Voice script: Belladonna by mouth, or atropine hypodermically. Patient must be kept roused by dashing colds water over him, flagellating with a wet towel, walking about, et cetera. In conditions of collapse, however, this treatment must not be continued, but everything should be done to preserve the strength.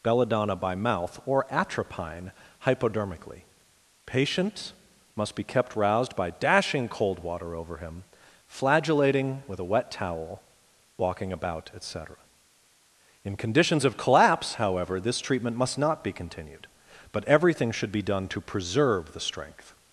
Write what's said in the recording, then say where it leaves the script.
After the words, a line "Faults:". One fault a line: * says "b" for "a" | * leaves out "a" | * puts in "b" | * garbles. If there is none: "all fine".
Belladonna by mouth, or atropine hypodermically. Patient must be kept roused by dashing cold water over him, flagellating with a wet towel, walking about, et cetera. In conditions of collapse, however, this treatment must not be continued, but everything should be done to preserve the strength.
Faults:
* says "cold" for "colds"